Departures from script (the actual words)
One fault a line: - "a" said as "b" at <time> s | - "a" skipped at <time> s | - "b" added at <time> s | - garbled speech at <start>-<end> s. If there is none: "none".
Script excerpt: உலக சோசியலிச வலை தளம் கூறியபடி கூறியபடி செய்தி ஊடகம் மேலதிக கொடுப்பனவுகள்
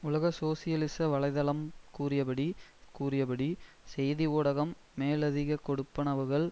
none